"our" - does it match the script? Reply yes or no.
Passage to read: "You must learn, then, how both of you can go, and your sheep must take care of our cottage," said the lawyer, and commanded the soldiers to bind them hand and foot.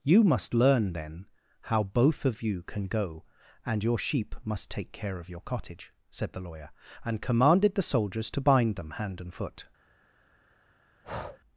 no